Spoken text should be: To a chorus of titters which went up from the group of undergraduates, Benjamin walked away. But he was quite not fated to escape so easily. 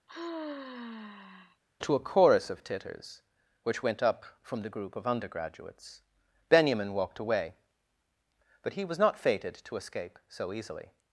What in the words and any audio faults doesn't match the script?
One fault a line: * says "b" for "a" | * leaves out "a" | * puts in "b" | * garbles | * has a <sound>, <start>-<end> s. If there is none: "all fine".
* has a sigh, 0.1-1.6 s
* leaves out "quite"